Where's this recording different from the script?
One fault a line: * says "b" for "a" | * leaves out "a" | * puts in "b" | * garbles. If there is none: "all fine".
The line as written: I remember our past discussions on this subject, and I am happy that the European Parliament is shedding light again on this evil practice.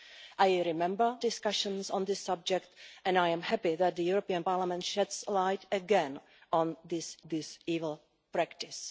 * leaves out "our past"
* puts in "this"